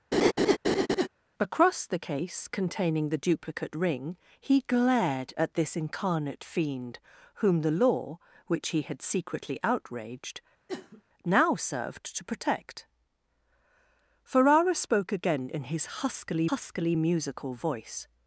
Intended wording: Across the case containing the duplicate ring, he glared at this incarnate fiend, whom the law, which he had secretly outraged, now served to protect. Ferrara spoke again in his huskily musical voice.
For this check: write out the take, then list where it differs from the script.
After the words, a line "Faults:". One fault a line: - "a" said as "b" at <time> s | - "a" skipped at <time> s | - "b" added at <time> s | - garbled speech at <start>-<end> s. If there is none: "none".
Across the case containing the duplicate ring, he glared at this incarnate fiend, whom the law, which he had secretly outraged, now served to protect. Ferrara spoke again in his huskily huskily musical voice.
Faults:
- "huskily" added at 16.5 s